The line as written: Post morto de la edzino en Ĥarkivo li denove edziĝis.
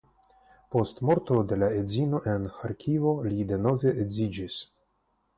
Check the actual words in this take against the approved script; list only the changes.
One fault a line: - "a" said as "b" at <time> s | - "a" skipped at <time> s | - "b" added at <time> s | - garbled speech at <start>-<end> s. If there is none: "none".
none